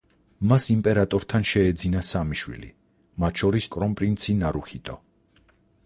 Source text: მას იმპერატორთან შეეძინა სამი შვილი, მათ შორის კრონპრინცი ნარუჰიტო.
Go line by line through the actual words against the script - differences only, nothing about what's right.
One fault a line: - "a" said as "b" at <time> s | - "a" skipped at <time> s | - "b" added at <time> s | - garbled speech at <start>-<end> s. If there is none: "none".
none